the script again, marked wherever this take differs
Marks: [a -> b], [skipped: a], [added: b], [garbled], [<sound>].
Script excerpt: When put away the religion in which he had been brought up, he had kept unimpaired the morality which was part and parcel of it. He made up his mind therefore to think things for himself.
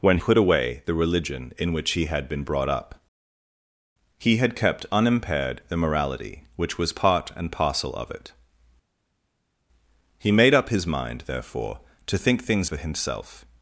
When put away the religion in which he had been brought up, he had kept unimpaired the morality which was part and parcel of it. He made up his mind therefore to think things for himself.